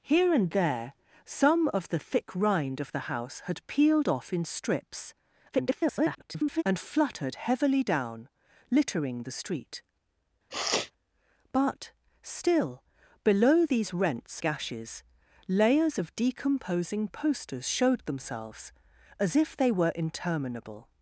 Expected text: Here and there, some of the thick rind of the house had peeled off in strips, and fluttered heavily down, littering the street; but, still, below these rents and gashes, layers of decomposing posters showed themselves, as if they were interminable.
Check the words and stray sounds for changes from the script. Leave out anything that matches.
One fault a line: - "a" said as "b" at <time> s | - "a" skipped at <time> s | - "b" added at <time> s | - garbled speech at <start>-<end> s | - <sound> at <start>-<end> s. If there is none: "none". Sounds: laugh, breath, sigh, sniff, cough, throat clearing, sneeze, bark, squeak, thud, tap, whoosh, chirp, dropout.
- garbled speech at 5.5-6.6 s
- sniff at 10.5-10.9 s
- "and" skipped at 14.4 s